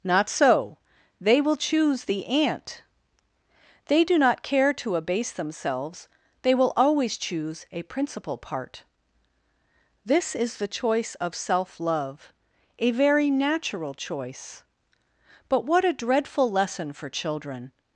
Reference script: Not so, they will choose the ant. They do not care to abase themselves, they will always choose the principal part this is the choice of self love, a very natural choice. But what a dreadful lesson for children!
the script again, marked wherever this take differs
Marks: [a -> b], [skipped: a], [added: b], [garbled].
Not so, they will choose the ant. They do not care to abase themselves, they will always choose [the -> a] principal part this is the choice of self love, a very natural choice. But what a dreadful lesson for children!